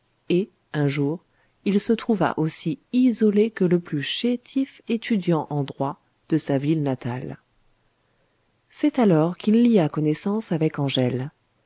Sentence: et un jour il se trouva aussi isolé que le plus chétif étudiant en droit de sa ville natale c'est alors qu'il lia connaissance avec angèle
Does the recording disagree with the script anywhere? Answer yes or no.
no